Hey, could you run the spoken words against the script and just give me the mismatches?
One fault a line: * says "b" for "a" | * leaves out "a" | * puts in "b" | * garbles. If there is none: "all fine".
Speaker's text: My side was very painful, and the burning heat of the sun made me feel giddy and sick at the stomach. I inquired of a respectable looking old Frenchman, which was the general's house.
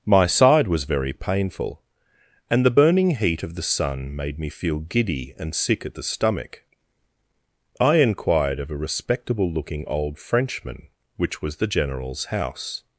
all fine